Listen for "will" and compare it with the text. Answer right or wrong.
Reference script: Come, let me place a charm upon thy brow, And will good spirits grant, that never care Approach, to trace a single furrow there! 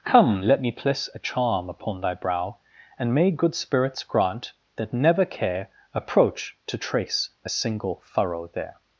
wrong